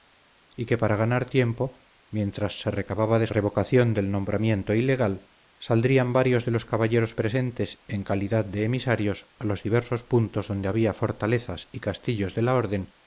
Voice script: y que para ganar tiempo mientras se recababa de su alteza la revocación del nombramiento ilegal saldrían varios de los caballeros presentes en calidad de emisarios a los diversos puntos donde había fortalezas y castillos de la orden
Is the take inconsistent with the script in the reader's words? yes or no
yes